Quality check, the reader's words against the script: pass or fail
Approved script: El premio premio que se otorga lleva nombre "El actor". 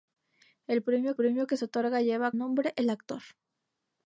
pass